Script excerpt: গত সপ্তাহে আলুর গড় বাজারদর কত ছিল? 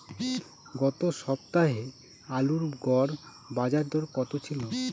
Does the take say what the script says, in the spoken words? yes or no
yes